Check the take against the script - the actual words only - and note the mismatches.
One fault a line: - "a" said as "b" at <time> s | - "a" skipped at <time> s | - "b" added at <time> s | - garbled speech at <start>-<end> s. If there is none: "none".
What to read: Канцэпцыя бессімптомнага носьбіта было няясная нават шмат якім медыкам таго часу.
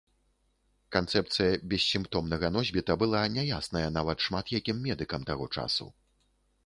- "было" said as "была" at 3.0 s